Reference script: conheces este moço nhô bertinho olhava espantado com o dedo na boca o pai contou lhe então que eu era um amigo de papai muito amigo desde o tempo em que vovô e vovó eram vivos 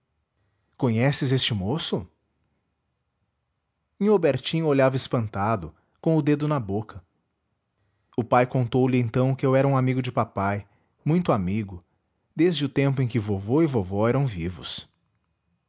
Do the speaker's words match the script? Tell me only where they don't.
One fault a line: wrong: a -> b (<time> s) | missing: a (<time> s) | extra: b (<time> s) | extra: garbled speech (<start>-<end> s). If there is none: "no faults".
no faults